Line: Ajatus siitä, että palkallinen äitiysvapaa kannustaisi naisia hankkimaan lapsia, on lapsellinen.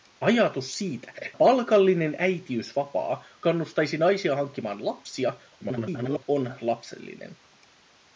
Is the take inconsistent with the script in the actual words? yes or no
yes